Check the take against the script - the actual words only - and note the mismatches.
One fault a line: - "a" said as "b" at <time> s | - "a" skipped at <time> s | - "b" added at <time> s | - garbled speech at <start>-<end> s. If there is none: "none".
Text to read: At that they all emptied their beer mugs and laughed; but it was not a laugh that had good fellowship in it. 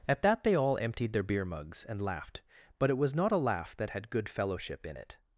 none